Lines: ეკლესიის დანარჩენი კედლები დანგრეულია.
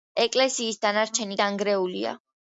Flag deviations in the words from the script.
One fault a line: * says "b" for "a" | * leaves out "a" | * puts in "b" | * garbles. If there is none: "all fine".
* leaves out "კედლები"